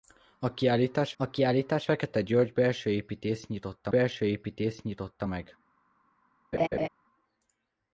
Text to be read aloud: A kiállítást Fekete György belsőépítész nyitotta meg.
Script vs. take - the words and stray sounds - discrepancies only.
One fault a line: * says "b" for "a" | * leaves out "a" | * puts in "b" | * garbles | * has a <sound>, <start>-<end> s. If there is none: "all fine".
* puts in "a kiállítást"
* puts in "belsőépítész nyitotta"
* has a laugh, 6.5-6.9 s